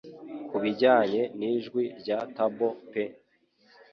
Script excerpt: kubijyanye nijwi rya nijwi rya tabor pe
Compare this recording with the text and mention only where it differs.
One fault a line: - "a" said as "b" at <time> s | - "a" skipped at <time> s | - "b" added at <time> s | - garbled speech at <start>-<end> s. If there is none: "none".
- "nijwi rya" skipped at 2.2 s